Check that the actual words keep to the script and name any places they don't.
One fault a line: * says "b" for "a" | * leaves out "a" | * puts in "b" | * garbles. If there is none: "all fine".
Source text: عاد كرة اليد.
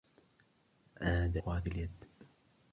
all fine